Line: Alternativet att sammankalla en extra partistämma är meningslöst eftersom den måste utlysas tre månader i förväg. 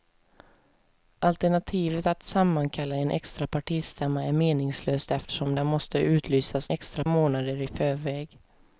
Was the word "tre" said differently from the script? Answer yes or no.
yes